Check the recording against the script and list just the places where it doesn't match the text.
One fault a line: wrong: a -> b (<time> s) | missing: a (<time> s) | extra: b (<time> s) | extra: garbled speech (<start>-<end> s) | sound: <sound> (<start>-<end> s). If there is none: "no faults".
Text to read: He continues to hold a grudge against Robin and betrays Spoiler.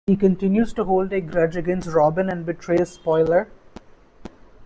no faults